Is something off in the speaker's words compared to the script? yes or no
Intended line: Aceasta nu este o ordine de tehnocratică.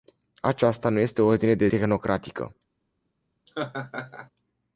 no